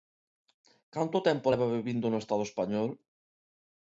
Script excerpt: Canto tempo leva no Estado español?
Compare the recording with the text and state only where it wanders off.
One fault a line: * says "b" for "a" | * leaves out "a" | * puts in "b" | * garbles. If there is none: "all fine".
* puts in "vivindo"